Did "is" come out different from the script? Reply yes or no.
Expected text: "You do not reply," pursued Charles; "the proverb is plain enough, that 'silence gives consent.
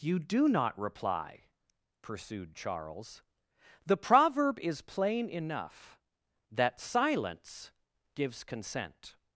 no